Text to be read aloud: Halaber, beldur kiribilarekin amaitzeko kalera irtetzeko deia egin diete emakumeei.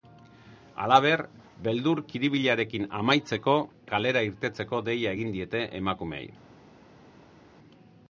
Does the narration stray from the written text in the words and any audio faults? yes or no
no